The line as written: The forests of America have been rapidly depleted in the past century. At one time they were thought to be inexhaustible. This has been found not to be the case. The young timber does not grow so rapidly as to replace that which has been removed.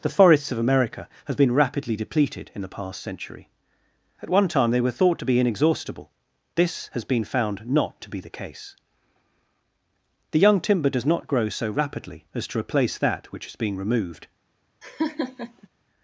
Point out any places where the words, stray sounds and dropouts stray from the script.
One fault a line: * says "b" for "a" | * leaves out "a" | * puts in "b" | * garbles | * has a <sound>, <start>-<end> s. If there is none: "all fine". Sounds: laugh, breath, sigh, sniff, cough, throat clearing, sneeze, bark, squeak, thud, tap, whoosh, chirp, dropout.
* says "is being" for "has been"
* has a laugh, 14.8-15.7 s